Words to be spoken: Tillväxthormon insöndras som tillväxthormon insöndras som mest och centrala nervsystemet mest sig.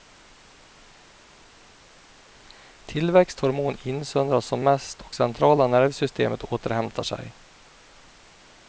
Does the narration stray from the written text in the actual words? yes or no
yes